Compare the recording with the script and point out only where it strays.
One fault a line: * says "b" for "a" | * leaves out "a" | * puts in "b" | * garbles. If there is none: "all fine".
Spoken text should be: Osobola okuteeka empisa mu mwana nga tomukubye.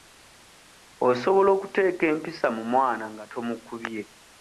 all fine